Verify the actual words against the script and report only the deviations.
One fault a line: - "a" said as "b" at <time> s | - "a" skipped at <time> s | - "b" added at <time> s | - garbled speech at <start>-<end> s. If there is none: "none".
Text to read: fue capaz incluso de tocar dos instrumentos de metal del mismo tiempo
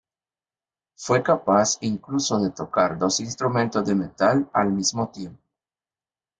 - "del" said as "al" at 4.5 s